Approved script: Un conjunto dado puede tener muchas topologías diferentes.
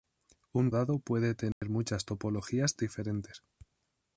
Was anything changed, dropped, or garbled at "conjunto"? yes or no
yes